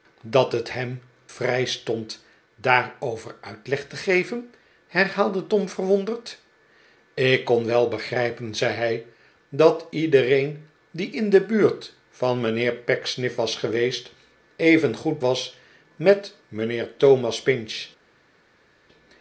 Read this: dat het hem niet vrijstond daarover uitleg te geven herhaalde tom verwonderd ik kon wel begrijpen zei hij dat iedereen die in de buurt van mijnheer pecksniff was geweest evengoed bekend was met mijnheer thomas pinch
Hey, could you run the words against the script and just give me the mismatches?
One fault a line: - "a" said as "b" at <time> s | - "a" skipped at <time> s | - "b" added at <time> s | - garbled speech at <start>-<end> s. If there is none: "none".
- "niet" skipped at 1.0 s
- "bekend" skipped at 15.2 s